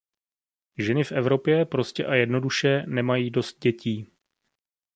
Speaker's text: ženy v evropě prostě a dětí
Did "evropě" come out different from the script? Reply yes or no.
no